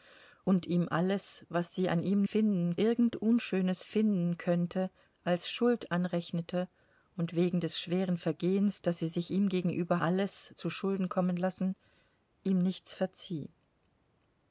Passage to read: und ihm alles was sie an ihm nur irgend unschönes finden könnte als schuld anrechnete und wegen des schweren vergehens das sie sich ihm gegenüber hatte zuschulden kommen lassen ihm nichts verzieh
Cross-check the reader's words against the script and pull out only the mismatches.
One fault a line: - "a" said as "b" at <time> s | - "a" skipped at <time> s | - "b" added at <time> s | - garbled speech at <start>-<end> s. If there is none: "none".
- "nur" said as "finden" at 2.2 s
- "hatte" said as "alles" at 10.0 s